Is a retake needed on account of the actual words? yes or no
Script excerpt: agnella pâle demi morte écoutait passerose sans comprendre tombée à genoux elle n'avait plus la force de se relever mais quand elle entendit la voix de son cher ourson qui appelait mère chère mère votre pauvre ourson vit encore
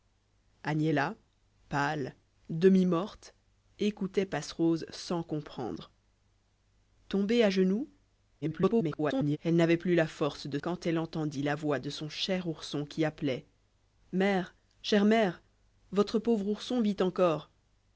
yes